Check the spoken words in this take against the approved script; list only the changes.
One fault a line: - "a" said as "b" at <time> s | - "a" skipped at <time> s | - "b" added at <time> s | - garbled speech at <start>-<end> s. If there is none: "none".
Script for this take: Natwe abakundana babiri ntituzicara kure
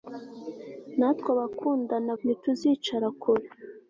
- "babiri" skipped at 2.1 s